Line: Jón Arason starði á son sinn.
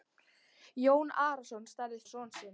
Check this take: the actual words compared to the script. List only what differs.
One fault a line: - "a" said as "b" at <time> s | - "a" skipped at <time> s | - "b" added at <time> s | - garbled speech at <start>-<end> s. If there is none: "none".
none